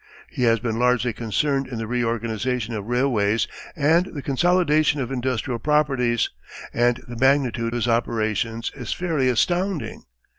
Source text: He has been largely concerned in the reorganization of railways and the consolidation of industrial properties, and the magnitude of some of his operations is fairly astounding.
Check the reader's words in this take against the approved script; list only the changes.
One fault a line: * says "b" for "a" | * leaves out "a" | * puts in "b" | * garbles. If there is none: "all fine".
* leaves out "of some of"